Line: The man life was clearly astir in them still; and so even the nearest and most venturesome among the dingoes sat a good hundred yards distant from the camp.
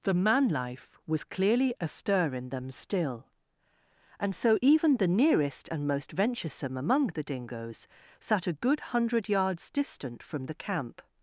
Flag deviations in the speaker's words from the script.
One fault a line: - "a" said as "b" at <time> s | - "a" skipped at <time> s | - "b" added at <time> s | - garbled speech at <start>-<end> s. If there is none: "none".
none